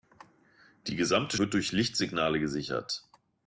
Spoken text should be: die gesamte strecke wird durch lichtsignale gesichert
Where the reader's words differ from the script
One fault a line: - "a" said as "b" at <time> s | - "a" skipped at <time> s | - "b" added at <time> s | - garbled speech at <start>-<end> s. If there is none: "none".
- "strecke" skipped at 1.4 s